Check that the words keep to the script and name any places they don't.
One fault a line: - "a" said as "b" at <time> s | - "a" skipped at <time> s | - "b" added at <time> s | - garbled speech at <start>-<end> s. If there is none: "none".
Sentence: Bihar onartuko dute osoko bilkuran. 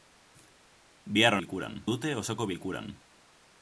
- "onartuko" said as "bilkuran" at 1.4 s